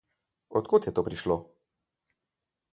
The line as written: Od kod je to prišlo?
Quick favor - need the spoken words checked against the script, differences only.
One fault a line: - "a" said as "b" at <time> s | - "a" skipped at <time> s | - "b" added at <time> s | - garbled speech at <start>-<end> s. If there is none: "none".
none